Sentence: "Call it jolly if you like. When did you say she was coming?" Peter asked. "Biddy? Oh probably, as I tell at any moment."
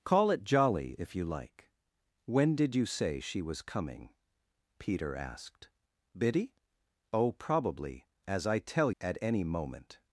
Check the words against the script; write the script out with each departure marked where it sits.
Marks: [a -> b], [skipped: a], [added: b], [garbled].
"Call it jolly if you like. When did you say she was coming?" Peter asked. "Biddy? Oh probably, as I tell at any moment."